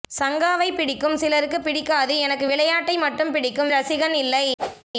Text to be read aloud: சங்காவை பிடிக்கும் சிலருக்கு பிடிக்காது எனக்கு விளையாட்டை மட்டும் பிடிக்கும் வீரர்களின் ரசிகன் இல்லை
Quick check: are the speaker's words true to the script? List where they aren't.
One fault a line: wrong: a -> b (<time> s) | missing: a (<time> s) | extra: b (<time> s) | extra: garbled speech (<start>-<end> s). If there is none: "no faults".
missing: வீரர்களின் (3.7 s)